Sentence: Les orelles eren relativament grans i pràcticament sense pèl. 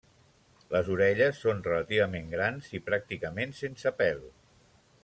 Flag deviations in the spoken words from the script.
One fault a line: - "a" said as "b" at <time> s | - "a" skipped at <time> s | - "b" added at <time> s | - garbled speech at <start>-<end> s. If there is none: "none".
- "eren" said as "són" at 1.4 s